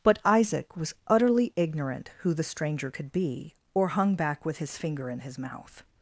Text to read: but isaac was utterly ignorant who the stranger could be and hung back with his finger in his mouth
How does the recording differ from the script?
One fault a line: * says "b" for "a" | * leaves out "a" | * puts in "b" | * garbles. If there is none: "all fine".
* says "or" for "and"